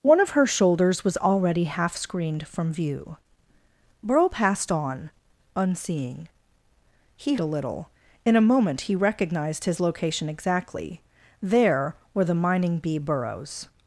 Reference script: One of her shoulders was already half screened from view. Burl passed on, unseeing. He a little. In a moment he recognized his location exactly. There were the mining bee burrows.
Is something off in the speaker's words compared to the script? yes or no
no